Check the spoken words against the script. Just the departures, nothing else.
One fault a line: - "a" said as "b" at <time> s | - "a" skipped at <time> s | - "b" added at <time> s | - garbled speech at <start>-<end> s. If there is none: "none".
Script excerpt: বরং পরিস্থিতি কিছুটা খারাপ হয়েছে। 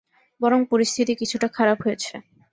none